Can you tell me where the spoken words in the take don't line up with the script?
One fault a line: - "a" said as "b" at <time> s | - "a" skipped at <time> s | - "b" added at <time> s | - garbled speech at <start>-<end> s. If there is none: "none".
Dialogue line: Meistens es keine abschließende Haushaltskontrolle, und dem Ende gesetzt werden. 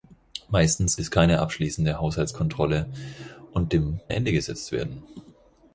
none